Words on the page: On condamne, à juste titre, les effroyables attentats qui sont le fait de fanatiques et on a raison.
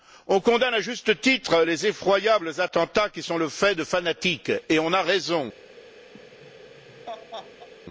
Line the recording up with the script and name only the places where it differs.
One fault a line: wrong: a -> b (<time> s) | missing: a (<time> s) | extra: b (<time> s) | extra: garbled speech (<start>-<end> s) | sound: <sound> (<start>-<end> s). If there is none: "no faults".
sound: laugh (6.1-7.7 s)